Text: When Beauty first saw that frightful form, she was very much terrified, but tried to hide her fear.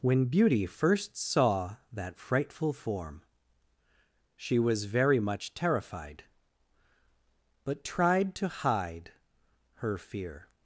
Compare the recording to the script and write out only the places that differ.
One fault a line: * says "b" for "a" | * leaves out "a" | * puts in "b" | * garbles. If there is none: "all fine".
all fine